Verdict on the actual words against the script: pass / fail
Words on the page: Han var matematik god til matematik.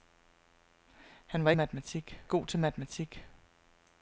pass